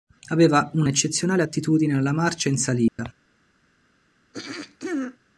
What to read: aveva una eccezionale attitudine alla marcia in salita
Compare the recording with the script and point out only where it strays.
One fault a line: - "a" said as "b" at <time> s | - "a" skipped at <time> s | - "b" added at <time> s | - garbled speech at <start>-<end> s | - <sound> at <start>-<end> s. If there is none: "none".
- dropout at 2.9-3.0 s
- throat clearing at 4.3-5.2 s